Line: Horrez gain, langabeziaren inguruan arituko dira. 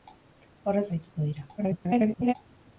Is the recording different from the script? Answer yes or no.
yes